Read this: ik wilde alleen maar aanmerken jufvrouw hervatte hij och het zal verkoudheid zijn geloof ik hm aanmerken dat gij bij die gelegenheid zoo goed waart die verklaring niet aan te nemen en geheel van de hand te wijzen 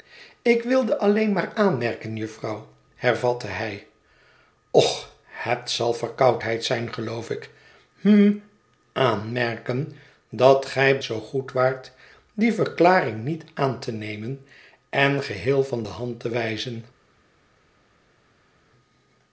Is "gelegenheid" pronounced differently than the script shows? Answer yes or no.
yes